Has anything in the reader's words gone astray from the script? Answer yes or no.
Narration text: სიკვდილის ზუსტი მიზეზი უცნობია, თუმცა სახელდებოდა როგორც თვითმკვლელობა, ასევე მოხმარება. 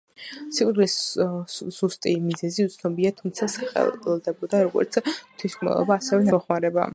no